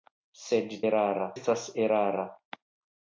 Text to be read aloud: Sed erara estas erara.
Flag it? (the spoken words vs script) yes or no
no